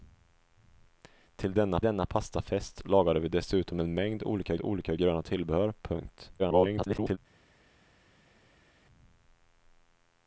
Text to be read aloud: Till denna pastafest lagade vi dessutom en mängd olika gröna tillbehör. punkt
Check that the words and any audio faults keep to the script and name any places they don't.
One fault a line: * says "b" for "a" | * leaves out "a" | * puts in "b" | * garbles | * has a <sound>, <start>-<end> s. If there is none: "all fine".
* puts in "denna"
* puts in "olika"
* garbles